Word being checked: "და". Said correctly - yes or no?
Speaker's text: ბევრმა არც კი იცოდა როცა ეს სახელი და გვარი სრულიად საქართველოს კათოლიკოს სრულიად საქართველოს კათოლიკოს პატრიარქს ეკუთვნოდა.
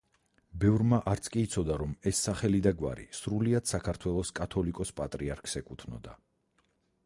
yes